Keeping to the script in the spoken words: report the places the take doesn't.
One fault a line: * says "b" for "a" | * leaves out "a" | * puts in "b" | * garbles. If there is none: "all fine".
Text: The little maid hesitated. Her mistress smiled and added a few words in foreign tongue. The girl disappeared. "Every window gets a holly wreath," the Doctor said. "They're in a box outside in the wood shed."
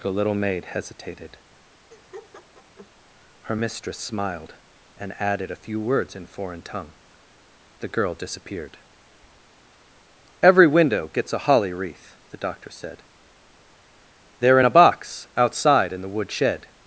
all fine